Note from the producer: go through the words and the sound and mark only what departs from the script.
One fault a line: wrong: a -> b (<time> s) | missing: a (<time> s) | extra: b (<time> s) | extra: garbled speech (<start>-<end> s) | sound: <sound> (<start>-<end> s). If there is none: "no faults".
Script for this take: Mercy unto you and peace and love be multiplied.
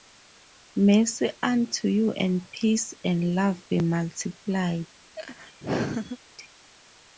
sound: laugh (5.2-6.2 s)